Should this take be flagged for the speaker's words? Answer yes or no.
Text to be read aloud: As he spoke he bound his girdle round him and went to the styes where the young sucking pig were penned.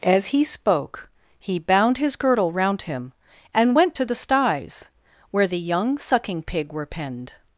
no